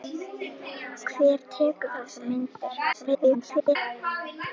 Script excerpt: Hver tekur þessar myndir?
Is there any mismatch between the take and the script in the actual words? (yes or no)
yes